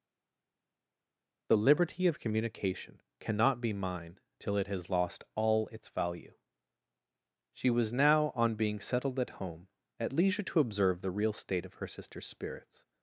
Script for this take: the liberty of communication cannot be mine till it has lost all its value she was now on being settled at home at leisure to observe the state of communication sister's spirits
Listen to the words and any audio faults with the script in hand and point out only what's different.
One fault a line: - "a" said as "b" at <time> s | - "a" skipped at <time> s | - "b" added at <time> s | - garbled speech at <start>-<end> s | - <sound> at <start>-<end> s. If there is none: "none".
- "real" added at 11.1 s
- "communication" said as "her" at 11.8 s